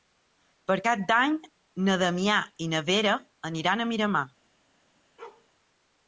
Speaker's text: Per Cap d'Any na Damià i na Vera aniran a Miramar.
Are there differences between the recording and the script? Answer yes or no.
no